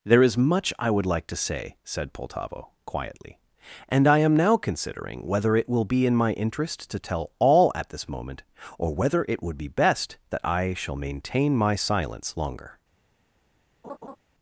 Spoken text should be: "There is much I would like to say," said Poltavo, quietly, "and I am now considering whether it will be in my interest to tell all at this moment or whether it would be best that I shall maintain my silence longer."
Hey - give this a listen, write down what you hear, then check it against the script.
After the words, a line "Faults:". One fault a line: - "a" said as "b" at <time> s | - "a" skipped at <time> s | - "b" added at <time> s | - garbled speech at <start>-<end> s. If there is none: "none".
"There is much I would like to say," said Poltavo, quietly, "and I am now considering whether it will be in my interest to tell all at this moment or whether it would be best that I shall maintain my silence longer."
Faults:
none